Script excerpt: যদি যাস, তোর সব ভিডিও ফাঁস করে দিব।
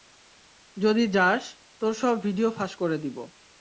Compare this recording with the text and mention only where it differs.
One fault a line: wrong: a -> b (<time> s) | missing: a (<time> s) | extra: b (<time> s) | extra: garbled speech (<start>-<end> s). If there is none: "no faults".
no faults